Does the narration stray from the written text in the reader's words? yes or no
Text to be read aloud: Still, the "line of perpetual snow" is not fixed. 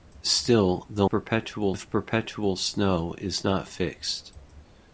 yes